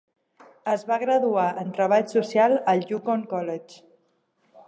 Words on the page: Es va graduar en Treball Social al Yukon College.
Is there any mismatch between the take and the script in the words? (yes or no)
no